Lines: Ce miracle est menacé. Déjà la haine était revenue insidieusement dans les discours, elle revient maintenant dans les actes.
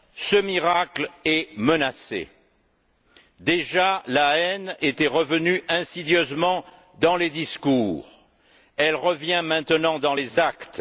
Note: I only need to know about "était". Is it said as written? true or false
true